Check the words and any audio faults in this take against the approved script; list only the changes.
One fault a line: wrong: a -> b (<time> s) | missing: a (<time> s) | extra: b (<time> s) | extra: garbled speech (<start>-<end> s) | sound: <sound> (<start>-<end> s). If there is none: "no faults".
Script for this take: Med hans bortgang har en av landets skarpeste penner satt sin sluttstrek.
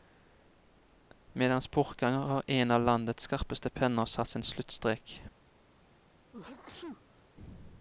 sound: sneeze (6.3-7.2 s)